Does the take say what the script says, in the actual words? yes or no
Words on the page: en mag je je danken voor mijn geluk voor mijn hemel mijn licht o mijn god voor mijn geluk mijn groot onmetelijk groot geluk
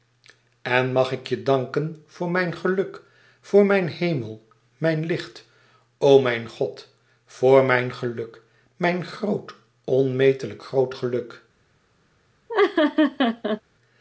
no